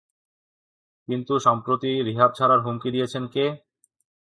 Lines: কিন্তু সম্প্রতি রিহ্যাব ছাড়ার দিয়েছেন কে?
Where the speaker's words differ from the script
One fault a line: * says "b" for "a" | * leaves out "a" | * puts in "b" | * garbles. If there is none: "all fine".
* puts in "হুমকি"